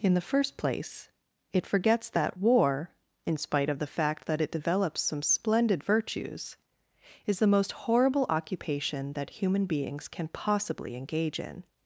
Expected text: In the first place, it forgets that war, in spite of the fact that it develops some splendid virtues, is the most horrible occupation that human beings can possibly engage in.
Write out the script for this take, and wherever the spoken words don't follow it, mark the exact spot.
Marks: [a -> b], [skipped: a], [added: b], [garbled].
In the first place, it forgets that war, in spite of the fact that it develops some splendid virtues, is the most horrible occupation that human beings can possibly engage in.